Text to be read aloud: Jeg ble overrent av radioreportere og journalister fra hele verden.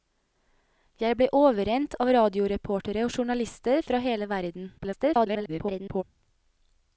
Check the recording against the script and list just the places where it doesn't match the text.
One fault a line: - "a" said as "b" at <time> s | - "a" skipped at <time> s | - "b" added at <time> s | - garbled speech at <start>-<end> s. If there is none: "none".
- garbled speech at 4.8-6.0 s